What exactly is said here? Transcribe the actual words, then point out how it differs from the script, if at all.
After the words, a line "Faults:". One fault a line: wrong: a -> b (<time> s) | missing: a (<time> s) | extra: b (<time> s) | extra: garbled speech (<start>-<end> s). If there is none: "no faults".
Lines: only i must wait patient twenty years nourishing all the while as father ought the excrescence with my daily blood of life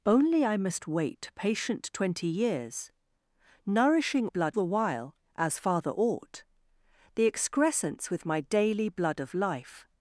only i must wait patient twenty years nourishing blood the while as father ought the excrescence with my daily blood of life
Faults:
wrong: all -> blood (4.3 s)